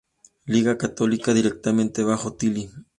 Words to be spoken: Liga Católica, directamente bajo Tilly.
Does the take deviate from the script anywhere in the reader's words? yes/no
no